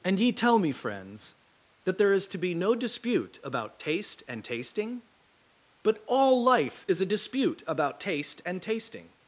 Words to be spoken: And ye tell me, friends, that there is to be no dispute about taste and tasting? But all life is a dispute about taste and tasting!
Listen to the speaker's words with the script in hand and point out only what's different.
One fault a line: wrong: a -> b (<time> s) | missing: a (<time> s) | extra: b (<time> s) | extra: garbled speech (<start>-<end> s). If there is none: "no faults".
no faults